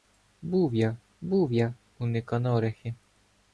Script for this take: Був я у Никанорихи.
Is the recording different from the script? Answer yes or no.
yes